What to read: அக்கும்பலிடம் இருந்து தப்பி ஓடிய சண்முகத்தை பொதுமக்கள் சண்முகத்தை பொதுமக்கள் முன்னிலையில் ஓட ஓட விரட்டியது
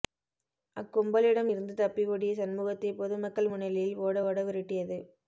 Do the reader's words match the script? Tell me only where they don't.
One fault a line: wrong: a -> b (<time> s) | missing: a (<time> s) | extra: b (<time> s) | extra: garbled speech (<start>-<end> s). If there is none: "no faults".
missing: சண்முகத்தை பொதுமக்கள் (3.5 s)